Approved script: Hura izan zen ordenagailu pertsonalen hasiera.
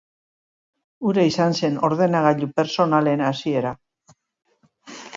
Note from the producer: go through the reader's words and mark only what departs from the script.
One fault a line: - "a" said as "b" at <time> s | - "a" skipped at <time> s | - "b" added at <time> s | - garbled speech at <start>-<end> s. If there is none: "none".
none